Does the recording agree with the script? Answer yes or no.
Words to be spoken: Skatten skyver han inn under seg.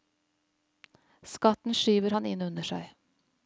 yes